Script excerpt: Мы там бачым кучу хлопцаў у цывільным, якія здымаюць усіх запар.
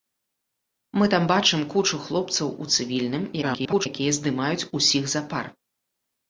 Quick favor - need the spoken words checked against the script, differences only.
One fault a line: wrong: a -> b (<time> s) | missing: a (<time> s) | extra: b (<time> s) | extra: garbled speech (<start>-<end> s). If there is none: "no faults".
extra: garbled speech (3.4-3.9 s)